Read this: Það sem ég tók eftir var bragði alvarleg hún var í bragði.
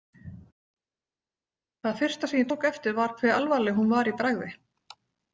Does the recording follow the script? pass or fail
fail